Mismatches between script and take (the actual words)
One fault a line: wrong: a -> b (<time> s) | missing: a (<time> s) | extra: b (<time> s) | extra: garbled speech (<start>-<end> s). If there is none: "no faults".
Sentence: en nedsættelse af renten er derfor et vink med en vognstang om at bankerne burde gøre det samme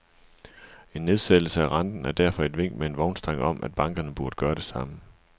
no faults